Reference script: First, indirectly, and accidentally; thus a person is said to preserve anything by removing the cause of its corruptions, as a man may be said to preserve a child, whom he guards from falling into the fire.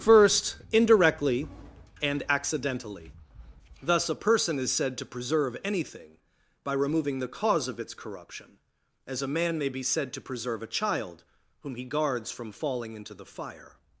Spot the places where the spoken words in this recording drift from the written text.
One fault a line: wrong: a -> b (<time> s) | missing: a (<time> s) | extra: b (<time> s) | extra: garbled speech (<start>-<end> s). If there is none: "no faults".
wrong: corruptions -> corruption (7.9 s)